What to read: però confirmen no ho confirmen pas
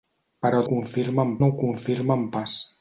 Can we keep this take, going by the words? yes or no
yes